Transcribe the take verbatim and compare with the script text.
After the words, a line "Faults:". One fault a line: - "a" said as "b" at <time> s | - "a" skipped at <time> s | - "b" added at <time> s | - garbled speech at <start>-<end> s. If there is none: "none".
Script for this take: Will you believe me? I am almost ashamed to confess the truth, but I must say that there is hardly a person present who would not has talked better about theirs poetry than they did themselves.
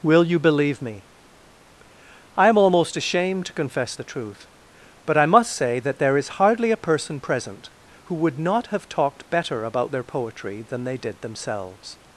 Will you believe me? I am almost ashamed to confess the truth, but I must say that there is hardly a person present who would not have talked better about their poetry than they did themselves.
Faults:
- "has" said as "have" at 8.7 s
- "theirs" said as "their" at 9.9 s